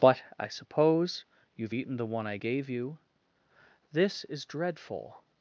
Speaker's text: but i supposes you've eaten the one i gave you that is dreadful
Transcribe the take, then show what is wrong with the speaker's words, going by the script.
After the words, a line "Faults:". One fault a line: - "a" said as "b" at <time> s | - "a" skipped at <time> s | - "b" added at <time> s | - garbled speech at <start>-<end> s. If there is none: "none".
but i suppose you've eaten the one i gave you this is dreadful
Faults:
- "supposes" said as "suppose" at 0.5 s
- "that" said as "this" at 3.9 s